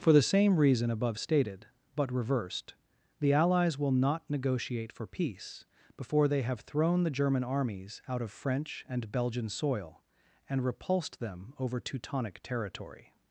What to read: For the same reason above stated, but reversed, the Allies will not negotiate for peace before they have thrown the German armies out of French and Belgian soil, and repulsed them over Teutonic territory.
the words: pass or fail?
pass